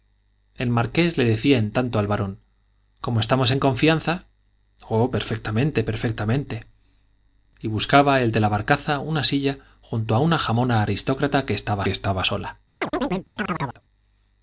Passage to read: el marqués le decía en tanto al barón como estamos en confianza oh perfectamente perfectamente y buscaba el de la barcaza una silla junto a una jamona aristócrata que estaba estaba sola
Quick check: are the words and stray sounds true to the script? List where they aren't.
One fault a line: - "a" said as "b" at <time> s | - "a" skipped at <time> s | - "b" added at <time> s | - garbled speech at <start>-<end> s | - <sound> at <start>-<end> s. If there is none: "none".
- chirp at 12.8-13.8 s